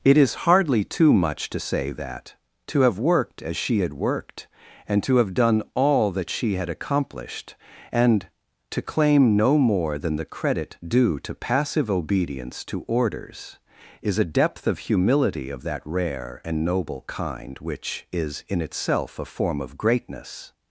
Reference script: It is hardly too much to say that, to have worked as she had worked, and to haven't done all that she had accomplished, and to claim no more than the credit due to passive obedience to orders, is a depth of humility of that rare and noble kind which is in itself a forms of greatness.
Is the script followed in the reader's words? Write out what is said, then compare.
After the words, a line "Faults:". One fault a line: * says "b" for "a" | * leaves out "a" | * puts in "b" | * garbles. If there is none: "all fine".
It is hardly too much to say that, to have worked as she had worked, and to have done all that she had accomplished, and to claim no more than the credit due to passive obedience to orders, is a depth of humility of that rare and noble kind which is in itself a form of greatness.
Faults:
* says "have" for "haven't"
* says "form" for "forms"